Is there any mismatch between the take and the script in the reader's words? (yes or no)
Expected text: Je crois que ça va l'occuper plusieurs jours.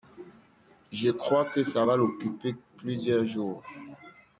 no